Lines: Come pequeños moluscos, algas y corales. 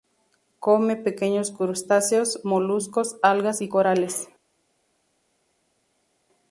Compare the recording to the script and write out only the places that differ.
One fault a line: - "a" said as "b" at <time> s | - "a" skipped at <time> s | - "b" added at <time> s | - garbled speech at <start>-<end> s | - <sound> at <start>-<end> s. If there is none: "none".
- "crustáceos" added at 1.5 s